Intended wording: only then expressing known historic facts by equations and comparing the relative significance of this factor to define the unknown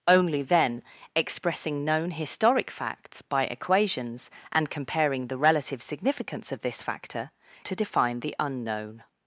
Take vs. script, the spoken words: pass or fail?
pass